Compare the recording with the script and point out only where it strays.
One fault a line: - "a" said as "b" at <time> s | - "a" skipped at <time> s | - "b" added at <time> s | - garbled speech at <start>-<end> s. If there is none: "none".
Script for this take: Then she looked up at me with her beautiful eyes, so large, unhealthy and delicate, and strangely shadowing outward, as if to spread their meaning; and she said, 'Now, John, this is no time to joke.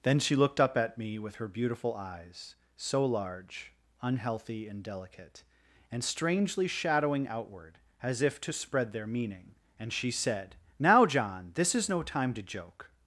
none